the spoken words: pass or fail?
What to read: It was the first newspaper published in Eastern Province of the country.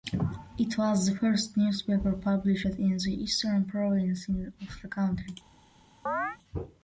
fail